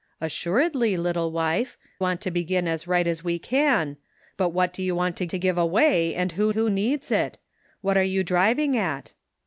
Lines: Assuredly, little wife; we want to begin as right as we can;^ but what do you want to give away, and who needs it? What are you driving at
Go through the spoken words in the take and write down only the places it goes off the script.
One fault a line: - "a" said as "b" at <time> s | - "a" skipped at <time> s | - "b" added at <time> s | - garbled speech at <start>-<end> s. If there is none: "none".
- "we" skipped at 1.8 s
- "to" added at 5.3 s
- "who" added at 6.5 s